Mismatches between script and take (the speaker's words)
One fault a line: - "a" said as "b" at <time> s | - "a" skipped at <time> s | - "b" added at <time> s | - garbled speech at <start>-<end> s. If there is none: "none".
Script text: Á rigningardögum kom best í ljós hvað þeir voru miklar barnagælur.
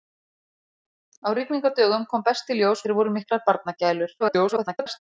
- "hvað" skipped at 2.8 s
- garbled speech at 4.2-5.0 s